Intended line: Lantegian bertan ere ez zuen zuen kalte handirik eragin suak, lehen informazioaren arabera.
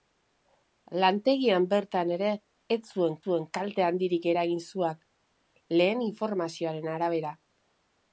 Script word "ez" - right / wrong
right